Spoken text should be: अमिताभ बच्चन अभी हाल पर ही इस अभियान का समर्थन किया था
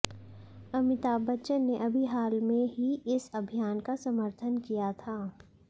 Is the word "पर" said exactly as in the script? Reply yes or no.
no